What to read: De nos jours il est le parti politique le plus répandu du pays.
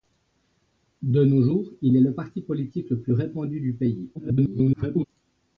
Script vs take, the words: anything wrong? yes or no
yes